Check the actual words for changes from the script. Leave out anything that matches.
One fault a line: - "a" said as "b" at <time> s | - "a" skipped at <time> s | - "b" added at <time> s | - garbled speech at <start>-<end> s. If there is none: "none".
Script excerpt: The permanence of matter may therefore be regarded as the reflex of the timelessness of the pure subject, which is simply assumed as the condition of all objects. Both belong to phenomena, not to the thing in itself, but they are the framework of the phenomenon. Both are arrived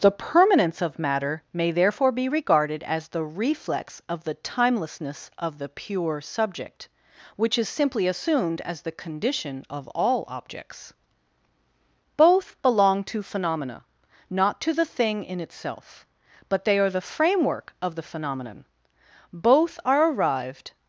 none